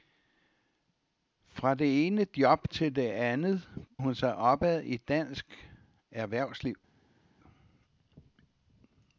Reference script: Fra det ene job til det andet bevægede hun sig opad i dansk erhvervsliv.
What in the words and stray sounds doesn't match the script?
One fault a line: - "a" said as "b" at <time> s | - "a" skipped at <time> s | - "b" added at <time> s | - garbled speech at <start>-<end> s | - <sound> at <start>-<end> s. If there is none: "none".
- "bevægede" skipped at 3.7 s